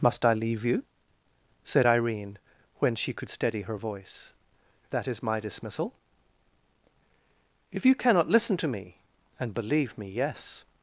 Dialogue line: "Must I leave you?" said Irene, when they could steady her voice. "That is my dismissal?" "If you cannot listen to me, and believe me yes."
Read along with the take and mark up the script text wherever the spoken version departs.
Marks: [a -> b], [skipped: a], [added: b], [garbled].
"Must I leave you?" said Irene, when [they -> she] could steady her voice. "That is my dismissal?" "If you cannot listen to me, and believe me yes."